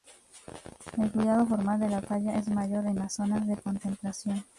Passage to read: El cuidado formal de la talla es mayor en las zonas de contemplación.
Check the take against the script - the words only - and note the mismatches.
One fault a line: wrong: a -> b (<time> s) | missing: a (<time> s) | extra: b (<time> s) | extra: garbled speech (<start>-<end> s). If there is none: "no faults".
no faults